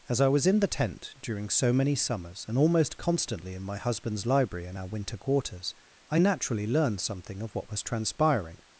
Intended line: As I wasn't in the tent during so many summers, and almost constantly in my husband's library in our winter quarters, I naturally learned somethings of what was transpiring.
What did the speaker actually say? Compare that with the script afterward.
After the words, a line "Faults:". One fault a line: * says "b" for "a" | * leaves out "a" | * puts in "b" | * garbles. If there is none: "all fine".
As I was in the tent during so many summers, and almost constantly in my husband's library in our winter quarters, I naturally learned something of what was transpiring.
Faults:
* says "was" for "wasn't"
* says "something" for "somethings"